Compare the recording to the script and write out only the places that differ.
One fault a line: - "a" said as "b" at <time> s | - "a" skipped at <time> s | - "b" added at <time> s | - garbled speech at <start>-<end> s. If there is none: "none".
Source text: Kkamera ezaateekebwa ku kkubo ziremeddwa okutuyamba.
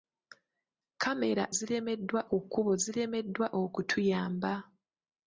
- "ezaateekebwa" said as "ziremeddwa" at 1.6 s